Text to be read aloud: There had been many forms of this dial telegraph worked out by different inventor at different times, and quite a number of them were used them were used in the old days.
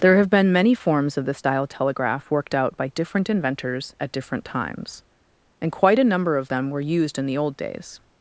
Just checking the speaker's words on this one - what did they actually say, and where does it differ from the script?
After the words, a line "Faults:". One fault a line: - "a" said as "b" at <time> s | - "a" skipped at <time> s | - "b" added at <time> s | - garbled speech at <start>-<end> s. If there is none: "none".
There have been many forms of this dial telegraph worked out by different inventors at different times, and quite a number of them were used in the old days.
Faults:
- "had" said as "have" at 0.2 s
- "inventor" said as "inventors" at 3.3 s
- "them were used" skipped at 7.2 s